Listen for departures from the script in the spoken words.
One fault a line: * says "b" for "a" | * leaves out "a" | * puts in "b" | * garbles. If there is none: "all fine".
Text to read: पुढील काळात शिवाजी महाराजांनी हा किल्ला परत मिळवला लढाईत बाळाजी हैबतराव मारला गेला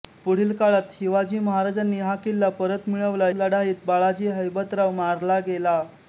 all fine